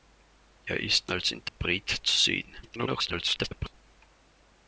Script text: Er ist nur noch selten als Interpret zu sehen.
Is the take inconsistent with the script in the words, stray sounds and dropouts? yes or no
yes